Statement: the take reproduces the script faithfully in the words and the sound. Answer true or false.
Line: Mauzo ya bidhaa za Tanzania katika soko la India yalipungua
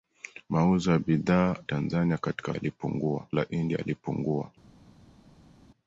false